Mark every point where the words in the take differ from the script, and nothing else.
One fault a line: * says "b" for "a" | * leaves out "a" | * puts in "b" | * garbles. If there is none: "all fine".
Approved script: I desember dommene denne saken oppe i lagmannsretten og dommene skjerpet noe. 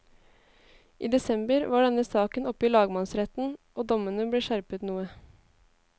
* says "var" for "dommene"
* puts in "ble"